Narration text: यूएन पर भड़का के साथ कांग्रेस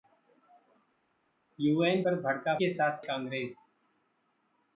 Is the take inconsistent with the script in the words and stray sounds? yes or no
no